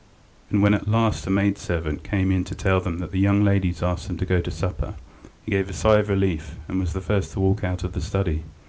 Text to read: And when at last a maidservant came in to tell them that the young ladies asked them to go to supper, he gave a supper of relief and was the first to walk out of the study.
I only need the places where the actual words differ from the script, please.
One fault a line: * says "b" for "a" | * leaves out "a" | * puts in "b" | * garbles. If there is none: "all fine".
* says "sigh" for "supper"